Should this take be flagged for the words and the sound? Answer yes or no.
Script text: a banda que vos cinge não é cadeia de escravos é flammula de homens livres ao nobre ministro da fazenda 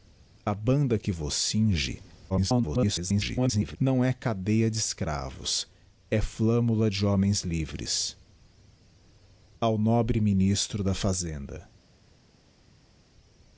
yes